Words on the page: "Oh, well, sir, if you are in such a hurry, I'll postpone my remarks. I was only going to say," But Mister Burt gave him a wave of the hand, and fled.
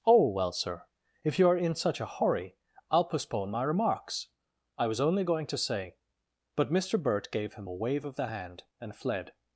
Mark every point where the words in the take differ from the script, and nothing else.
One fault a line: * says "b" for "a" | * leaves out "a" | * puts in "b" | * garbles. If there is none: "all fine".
all fine